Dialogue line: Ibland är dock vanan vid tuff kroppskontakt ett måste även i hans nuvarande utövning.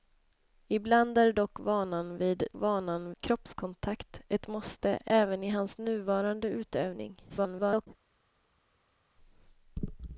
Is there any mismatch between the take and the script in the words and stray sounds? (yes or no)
yes